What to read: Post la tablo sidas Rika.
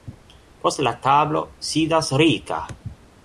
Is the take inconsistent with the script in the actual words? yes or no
no